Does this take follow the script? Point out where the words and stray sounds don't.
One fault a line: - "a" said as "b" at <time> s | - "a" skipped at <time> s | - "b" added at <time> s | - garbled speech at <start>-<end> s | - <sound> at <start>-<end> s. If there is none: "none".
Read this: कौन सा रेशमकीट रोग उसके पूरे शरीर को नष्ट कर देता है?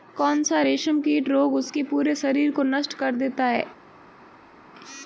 none